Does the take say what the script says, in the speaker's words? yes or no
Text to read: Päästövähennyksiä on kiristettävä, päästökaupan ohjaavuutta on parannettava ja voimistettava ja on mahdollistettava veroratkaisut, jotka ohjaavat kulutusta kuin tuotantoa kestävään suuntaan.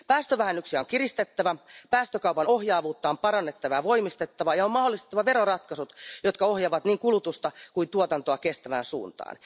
no